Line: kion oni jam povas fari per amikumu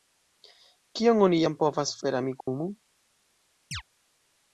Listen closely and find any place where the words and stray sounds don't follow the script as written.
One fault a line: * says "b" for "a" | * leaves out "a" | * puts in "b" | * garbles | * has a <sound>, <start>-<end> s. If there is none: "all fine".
* leaves out "fari"
* has a dropout, 2.4-2.5 s
* has a chirp, 3.7-3.8 s